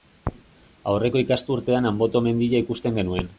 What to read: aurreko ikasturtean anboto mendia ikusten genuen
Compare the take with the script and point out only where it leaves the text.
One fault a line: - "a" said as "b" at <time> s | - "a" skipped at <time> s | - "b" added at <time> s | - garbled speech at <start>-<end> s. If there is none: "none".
none